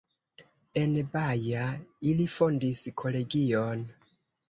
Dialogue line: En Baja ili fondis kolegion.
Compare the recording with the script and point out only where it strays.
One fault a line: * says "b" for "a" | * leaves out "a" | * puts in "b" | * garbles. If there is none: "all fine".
all fine